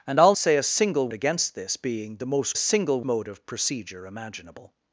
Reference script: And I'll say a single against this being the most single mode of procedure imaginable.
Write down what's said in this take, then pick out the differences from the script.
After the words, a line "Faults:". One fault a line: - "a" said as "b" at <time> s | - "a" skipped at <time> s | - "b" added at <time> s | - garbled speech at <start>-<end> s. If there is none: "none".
And I'll say a single against this being the most single mode of procedure imaginable.
Faults:
none